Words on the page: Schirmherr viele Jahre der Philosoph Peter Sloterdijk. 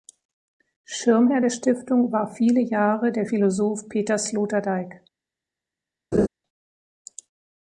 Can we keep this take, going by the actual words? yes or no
no